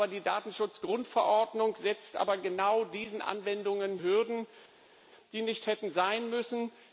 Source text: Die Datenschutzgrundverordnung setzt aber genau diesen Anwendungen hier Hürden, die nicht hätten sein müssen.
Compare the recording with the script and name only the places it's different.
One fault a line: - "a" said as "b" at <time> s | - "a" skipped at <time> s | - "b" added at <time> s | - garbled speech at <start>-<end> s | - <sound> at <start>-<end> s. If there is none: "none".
- "hier" skipped at 4.0 s